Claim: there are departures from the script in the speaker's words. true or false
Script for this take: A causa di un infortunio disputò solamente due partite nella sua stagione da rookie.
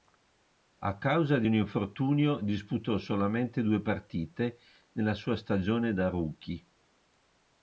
false